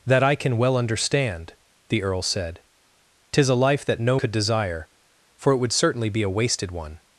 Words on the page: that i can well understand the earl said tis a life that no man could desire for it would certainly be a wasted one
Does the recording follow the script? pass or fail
fail